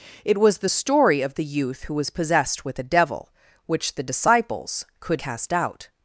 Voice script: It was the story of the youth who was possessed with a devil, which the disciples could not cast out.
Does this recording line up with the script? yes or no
no